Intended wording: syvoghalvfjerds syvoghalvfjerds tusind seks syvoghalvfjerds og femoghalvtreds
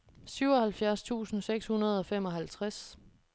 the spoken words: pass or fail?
fail